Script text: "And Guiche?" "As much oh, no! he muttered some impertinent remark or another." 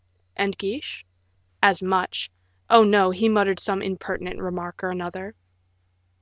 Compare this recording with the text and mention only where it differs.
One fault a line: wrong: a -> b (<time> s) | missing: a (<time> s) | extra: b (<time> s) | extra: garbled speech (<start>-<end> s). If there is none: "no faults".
no faults